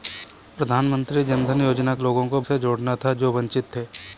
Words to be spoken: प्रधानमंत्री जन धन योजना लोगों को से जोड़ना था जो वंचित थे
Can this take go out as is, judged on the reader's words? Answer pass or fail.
pass